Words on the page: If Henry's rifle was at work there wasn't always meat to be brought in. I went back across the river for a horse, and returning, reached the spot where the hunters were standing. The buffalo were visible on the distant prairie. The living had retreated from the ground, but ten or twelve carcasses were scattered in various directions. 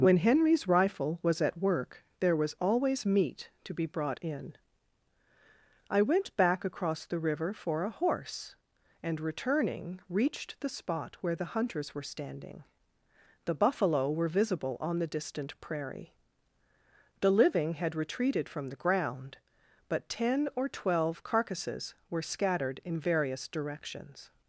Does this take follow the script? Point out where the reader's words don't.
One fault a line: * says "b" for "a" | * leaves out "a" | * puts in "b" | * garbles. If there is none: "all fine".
* says "When" for "If"
* says "was" for "wasn't"